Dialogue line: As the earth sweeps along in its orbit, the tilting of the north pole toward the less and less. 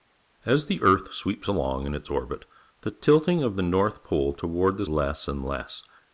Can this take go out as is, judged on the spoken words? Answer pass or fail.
pass